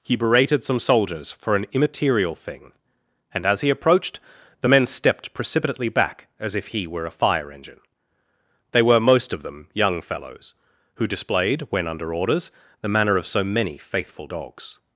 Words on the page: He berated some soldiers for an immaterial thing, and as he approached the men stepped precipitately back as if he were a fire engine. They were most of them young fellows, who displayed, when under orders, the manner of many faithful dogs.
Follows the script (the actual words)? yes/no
no